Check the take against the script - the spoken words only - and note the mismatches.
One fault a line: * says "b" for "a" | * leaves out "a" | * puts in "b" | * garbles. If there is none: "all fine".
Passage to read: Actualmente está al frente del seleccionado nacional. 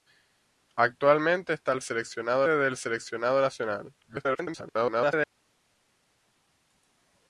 * says "seleccionado" for "frente"
* garbles